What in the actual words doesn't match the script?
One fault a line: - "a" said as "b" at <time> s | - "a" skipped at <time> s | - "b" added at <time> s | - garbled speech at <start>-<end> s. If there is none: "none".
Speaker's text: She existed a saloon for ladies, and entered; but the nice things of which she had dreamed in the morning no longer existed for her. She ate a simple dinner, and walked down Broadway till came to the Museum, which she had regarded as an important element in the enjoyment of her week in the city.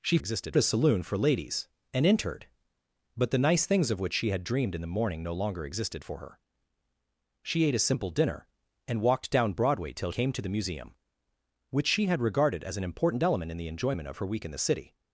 none